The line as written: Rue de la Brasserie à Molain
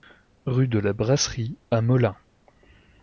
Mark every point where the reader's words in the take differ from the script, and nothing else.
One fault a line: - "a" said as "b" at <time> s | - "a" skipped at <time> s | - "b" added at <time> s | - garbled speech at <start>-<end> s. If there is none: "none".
none